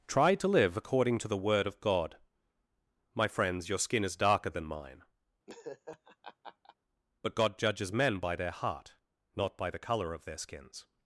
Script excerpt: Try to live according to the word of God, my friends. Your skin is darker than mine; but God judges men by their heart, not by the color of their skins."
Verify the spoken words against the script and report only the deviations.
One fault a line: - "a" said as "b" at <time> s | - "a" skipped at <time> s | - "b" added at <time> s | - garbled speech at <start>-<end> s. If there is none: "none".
none